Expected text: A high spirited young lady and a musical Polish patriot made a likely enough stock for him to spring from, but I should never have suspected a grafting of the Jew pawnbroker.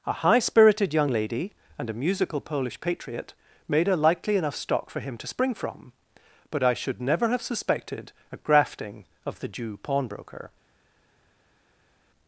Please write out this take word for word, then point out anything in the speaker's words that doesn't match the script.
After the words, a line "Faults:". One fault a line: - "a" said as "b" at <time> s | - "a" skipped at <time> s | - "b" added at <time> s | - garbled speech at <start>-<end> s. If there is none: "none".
A high spirited young lady and a musical Polish patriot made a likely enough stock for him to spring from, but I should never have suspected a grafting of the Jew pawnbroker.
Faults:
none